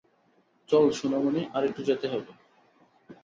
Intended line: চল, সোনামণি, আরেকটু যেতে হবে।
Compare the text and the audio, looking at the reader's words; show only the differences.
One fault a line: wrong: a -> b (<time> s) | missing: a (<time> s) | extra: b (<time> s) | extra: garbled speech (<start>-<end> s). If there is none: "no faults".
no faults